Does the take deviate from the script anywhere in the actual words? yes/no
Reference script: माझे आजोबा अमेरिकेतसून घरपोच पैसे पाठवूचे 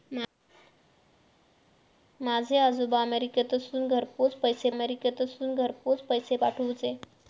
yes